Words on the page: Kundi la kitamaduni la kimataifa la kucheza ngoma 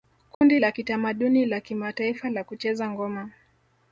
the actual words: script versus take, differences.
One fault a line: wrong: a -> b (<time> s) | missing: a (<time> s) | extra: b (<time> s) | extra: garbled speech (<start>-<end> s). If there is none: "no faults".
no faults